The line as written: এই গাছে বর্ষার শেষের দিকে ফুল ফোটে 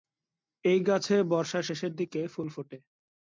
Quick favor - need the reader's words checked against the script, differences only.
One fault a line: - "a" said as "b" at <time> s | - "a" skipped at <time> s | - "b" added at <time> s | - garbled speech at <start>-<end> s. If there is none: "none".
none